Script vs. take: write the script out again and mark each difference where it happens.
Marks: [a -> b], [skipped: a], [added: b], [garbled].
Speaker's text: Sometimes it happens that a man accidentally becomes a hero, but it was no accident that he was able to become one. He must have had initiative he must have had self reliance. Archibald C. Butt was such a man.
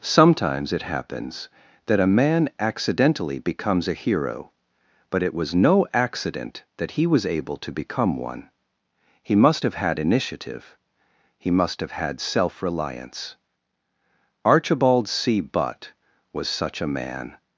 Sometimes it happens that a man accidentally becomes a hero, but it was no accident that he was able to become one. He must have had initiative he must have had self reliance. Archibald C. Butt was such a man.